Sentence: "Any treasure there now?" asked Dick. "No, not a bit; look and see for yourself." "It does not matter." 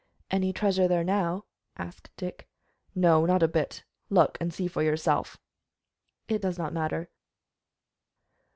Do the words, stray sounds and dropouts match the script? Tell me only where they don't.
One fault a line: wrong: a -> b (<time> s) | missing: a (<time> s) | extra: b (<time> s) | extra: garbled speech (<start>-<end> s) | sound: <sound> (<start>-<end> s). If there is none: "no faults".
no faults